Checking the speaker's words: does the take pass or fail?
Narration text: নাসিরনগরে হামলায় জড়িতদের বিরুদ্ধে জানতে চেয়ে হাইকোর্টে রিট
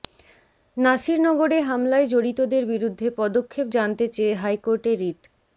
fail